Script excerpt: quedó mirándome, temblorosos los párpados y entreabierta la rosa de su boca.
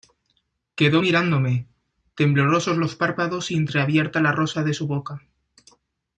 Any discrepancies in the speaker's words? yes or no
no